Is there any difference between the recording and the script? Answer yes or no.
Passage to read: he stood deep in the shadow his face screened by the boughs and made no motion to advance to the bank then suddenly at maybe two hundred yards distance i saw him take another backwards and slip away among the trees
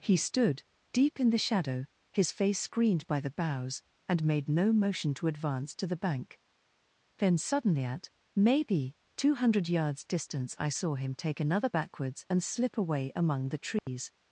no